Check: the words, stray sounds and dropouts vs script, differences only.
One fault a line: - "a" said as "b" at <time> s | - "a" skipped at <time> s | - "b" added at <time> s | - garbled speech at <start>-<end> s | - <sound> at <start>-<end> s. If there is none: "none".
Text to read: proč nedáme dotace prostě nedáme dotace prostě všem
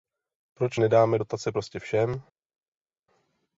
- "nedáme dotace prostě" skipped at 1.8 s